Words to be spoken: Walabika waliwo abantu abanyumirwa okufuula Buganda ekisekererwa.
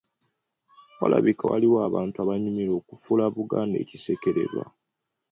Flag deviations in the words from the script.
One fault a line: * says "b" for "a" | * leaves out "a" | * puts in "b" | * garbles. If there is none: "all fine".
all fine